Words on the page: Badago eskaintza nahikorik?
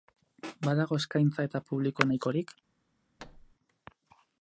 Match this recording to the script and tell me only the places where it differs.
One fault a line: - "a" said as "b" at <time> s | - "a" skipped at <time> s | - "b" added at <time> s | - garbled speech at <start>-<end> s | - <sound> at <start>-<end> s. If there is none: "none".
- "eta publiko" added at 1.5 s
- thud at 3.2-3.5 s